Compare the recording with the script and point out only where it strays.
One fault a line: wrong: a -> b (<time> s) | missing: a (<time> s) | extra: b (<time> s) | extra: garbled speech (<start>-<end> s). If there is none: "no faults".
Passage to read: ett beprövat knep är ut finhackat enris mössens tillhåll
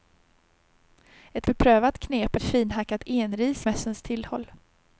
no faults